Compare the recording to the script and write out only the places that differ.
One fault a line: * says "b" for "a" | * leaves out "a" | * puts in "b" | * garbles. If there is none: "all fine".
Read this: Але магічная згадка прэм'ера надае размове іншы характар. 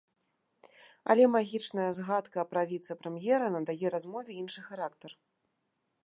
* puts in "пра віцэ"